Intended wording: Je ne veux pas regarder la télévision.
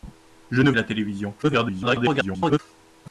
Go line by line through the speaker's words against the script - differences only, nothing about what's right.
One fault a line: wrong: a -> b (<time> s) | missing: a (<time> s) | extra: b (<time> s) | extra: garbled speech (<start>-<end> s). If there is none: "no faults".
missing: veux pas regarder (0.7 s)
extra: garbled speech (1.4-2.6 s)